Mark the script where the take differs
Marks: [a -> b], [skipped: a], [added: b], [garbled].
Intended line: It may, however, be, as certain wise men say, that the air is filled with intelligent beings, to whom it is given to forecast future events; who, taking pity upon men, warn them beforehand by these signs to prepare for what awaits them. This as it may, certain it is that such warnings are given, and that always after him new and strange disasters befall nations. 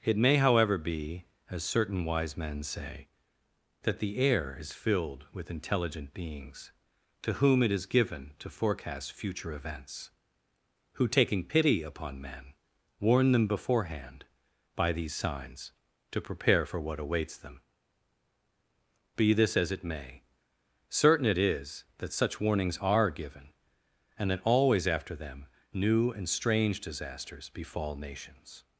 It may, however, be, as certain wise men say, that the air is filled with intelligent beings, to whom it is given to forecast future events; who, taking pity upon men, warn them beforehand by these signs to prepare for what awaits them. [added: Be] This as it may, certain it is that such warnings are given, and that always after [him -> them] new and strange disasters befall nations.